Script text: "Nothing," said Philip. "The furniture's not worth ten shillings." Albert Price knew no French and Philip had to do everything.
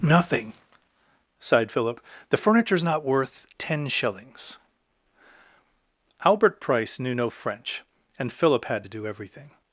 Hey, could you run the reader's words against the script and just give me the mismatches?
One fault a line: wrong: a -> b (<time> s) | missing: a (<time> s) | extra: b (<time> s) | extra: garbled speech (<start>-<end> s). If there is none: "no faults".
wrong: said -> sighed (1.4 s)